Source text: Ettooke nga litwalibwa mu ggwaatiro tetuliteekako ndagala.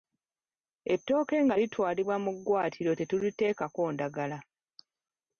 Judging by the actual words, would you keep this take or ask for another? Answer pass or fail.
pass